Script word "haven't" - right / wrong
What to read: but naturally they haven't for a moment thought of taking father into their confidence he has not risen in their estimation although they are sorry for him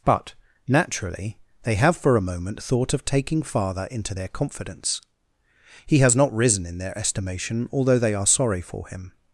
wrong